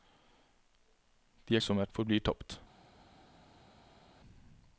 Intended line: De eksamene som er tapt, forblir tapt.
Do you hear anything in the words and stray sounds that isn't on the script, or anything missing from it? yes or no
yes